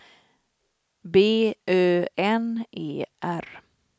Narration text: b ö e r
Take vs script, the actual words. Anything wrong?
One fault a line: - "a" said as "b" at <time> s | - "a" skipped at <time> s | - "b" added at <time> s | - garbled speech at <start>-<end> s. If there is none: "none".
- "n" added at 2.2 s